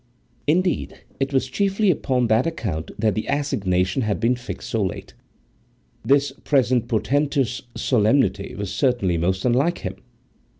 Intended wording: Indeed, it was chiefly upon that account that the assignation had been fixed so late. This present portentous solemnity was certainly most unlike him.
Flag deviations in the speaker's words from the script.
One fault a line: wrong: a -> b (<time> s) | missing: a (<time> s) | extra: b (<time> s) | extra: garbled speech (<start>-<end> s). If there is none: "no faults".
no faults